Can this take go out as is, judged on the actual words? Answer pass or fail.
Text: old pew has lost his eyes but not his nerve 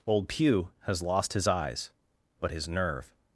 fail